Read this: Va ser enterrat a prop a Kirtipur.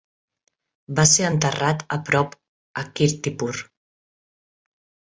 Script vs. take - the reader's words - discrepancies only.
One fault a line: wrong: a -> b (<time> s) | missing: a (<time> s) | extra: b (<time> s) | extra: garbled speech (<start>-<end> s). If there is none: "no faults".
no faults